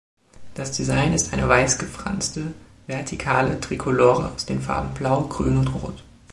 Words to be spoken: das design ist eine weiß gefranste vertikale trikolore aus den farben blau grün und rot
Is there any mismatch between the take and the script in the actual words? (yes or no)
no